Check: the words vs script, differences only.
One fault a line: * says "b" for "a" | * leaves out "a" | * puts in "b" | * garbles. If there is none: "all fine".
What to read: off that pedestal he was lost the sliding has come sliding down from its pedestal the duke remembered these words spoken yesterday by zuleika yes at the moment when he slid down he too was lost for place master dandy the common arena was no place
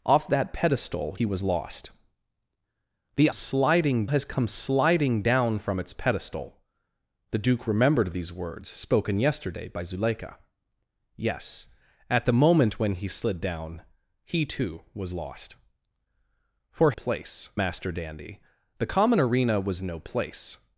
all fine